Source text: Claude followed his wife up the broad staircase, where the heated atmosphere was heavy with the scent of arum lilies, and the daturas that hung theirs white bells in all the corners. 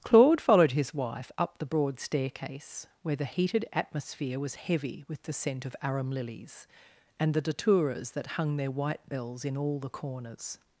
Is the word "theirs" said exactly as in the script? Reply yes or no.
no